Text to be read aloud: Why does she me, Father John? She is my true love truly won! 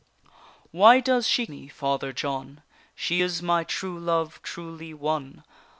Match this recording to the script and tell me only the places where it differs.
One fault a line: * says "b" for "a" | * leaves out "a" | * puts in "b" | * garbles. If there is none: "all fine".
all fine